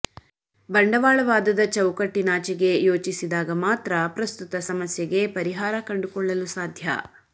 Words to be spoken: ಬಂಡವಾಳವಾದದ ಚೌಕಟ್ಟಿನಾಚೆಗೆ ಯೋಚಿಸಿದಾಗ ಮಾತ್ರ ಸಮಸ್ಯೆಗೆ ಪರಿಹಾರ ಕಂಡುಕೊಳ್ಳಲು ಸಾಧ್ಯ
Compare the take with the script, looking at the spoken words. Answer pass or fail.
fail